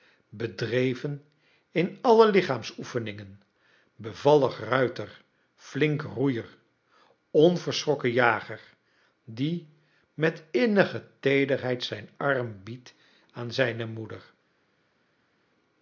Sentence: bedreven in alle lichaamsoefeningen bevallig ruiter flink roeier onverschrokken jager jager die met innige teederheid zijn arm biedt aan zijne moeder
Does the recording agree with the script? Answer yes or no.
no